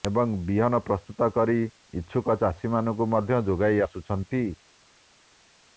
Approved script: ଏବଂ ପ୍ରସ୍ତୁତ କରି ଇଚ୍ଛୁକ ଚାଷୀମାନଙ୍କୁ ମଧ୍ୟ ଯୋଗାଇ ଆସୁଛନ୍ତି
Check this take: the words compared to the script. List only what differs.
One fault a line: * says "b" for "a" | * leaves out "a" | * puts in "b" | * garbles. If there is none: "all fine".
* puts in "ବିହନ"